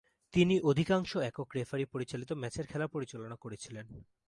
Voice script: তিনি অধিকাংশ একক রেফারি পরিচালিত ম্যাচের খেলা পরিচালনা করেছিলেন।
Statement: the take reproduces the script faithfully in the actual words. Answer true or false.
true